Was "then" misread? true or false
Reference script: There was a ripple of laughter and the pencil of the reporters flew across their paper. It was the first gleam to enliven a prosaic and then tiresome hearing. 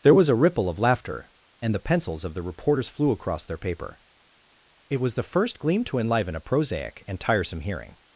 true